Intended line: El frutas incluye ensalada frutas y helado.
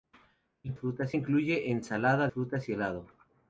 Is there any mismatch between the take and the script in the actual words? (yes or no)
no